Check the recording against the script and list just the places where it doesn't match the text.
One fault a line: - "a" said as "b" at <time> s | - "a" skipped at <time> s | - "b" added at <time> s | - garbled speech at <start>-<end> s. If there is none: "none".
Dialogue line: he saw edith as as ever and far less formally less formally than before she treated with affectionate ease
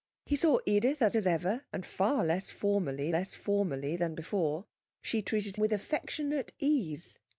none